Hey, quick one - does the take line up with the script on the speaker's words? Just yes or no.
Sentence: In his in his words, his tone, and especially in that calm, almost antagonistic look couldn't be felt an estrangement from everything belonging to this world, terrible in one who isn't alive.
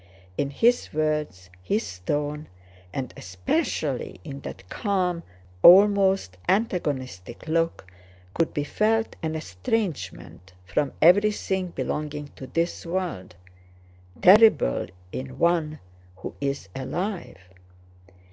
no